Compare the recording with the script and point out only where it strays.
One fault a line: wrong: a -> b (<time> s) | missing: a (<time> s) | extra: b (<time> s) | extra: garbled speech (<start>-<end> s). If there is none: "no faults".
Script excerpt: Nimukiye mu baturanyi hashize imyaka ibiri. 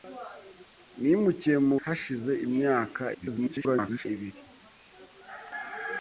missing: baturanyi (1.8 s)
extra: garbled speech (3.1-4.1 s)